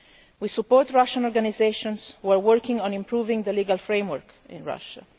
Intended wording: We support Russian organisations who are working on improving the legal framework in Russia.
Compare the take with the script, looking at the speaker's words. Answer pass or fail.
pass